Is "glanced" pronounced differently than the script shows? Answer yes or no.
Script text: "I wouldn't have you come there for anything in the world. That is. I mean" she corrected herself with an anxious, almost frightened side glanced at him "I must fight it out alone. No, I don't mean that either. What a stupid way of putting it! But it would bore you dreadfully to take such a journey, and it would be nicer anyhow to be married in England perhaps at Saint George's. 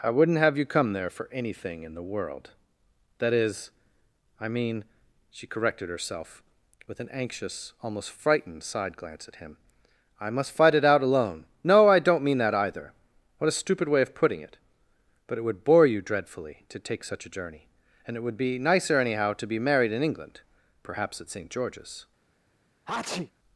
yes